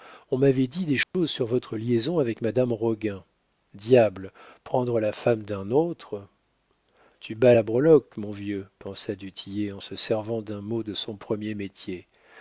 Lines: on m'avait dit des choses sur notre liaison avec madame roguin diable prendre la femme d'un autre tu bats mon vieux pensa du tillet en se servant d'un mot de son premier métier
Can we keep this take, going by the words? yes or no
no